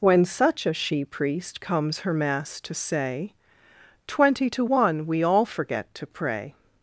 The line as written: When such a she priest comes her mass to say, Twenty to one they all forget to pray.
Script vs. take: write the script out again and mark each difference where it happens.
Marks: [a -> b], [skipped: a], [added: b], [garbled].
When such a she priest comes her mass to say, Twenty to one [they -> we] all forget to pray.